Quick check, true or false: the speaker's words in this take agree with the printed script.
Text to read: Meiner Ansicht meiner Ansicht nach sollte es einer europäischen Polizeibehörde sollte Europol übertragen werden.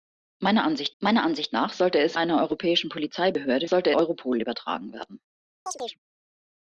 true